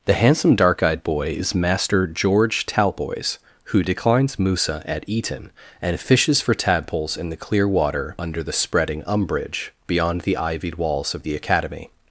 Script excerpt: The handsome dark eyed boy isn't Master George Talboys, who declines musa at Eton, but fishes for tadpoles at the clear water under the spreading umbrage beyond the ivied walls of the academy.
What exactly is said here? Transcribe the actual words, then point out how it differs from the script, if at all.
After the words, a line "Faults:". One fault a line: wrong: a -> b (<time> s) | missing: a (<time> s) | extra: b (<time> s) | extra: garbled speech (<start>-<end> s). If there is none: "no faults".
The handsome dark eyed boy is Master George Talboys, who declines musa at Eton, and fishes for tadpoles in the clear water under the spreading umbrage beyond the ivied walls of the academy.
Faults:
wrong: isn't -> is (1.4 s)
wrong: but -> and (5.8 s)
wrong: at -> in (7.2 s)